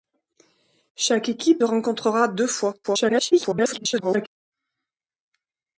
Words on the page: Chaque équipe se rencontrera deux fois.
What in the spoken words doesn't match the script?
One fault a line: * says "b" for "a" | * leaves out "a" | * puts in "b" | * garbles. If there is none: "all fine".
* leaves out "se"
* garbles